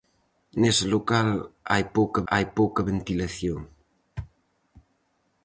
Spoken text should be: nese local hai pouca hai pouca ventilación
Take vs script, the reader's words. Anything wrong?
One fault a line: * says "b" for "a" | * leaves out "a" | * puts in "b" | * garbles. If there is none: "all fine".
all fine